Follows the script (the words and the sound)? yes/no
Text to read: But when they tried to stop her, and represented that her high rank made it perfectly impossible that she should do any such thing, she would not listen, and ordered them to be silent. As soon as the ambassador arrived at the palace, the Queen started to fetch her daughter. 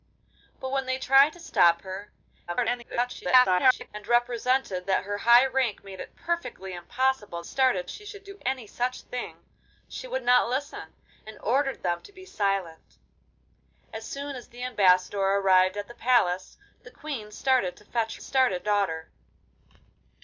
no